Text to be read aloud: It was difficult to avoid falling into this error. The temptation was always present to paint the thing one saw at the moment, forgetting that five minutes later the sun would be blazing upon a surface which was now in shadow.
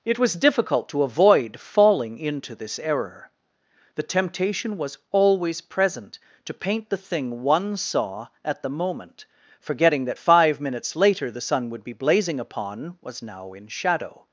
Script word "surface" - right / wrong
wrong